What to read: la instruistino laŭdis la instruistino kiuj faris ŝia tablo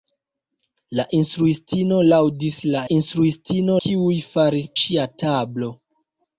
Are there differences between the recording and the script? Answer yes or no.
no